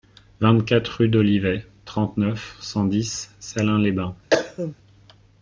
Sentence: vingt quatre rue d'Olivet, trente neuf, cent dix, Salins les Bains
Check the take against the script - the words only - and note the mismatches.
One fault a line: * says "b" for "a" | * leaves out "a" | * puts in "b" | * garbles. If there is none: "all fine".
all fine